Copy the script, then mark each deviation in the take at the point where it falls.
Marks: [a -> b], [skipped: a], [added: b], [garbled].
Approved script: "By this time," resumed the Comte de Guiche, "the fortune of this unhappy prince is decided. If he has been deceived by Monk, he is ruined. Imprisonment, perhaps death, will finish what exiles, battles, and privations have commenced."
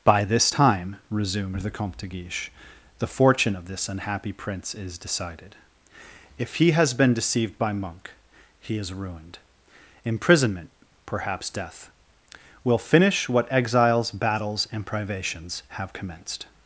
"By this time," resumed the Comte de Guiche, "the fortune of this unhappy prince is decided. If he has been deceived by Monk, he is ruined. Imprisonment, perhaps death, will finish what exiles, battles, and privations have commenced."